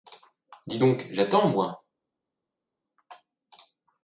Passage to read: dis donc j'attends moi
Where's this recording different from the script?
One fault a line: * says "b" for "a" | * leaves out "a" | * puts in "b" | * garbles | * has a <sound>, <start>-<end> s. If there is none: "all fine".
all fine